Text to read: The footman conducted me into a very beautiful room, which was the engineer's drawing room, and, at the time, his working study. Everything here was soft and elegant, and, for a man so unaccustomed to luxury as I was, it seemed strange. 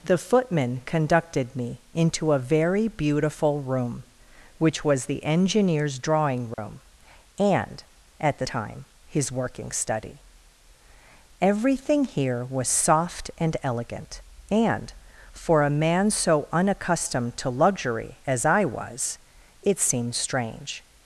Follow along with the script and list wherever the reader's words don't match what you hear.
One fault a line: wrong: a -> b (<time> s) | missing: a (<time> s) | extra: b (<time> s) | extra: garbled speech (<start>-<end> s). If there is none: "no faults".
no faults